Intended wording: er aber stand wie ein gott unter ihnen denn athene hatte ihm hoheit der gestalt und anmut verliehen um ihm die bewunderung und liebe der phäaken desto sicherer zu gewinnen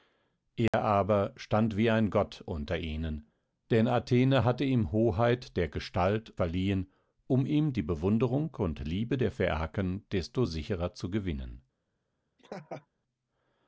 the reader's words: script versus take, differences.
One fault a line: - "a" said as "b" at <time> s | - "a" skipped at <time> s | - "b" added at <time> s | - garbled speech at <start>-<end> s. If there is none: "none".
- "und anmut" skipped at 6.3 s